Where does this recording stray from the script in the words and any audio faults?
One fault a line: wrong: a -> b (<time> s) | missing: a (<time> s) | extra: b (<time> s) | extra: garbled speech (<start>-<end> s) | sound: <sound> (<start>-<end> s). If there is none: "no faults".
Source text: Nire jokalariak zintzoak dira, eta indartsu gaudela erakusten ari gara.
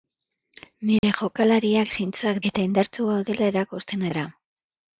sound: dropout (1.0-1.0 s)
missing: dira (2.4 s)
missing: ari (4.1 s)